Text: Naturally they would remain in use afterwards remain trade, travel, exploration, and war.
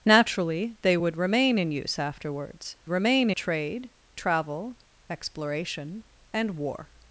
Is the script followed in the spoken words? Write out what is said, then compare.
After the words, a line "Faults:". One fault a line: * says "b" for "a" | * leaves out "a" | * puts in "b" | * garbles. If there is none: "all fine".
Naturally they would remain in use afterwards remain trade, travel, exploration, and war.
Faults:
all fine